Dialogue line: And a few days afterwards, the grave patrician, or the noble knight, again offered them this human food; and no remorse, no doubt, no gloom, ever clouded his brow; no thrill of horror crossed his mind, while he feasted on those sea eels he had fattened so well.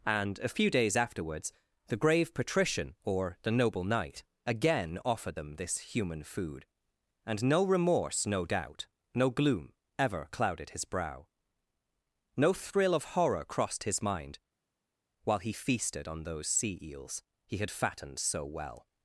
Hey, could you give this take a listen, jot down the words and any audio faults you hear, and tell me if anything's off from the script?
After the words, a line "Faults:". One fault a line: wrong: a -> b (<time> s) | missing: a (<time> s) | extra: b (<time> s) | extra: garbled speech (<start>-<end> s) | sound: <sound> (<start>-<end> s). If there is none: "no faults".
And a few days afterwards, the grave patrician, or the noble knight, again offered them this human food; and no remorse, no doubt, no gloom, ever clouded his brow; no thrill of horror crossed his mind, while he feasted on those sea eels he had fattened so well.
Faults:
no faults